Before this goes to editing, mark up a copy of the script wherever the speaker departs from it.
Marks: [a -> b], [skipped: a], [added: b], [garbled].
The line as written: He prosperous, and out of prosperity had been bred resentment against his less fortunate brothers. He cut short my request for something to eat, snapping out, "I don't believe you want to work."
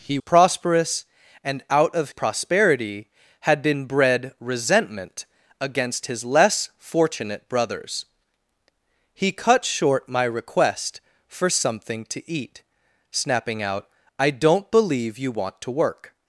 He prosperous, and out of prosperity had been bred resentment against his less fortunate brothers. He cut short my request for something to eat, snapping out, "I don't believe you want to work."